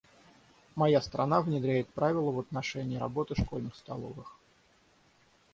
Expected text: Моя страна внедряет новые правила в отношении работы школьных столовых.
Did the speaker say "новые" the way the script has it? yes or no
no